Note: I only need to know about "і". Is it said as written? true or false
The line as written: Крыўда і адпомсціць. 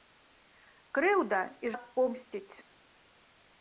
true